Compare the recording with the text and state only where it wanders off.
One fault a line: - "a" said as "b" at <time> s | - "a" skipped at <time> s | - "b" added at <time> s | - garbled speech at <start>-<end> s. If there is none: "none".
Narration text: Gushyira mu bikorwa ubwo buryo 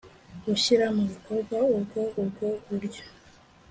- "ubwo" added at 2.2 s